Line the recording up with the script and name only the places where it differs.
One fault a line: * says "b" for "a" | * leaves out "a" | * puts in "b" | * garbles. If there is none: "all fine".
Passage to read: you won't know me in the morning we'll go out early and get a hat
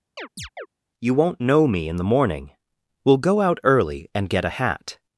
all fine